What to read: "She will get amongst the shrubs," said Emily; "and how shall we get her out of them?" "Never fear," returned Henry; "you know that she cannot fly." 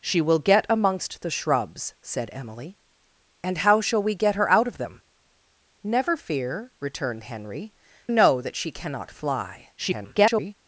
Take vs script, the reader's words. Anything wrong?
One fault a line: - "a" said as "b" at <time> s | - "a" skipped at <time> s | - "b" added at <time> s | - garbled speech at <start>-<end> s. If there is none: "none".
- "you" skipped at 7.7 s
- garbled speech at 9.8-10.5 s